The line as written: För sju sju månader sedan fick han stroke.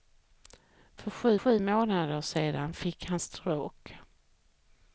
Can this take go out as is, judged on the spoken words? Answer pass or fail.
pass